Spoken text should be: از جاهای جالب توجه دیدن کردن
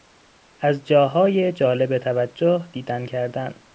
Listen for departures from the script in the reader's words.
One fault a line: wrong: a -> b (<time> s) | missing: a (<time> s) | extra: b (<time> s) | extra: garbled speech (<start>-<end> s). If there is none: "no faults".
no faults